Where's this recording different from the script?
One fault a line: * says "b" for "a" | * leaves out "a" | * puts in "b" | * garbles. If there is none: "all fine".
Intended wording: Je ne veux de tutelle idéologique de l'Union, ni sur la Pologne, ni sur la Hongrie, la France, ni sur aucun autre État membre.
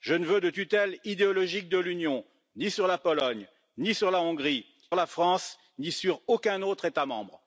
all fine